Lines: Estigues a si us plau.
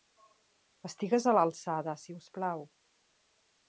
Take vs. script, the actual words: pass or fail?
fail